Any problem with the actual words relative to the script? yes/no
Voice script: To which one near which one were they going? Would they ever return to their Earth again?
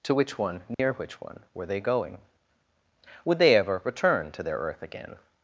no